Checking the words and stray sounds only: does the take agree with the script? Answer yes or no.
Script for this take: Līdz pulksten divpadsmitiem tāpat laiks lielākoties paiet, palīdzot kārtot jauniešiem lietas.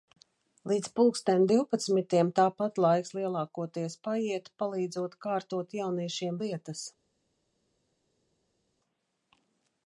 yes